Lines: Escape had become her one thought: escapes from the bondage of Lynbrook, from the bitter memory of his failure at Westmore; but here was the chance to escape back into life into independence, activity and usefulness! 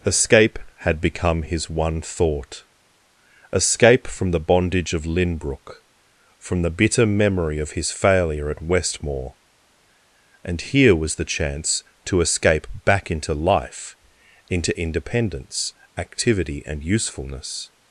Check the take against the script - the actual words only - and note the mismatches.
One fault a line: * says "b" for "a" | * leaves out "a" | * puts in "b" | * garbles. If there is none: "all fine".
* says "his" for "her"
* says "escape" for "escapes"
* says "and" for "but"